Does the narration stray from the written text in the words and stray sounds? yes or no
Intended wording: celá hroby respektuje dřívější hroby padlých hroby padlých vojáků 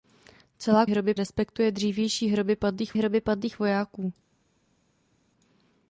no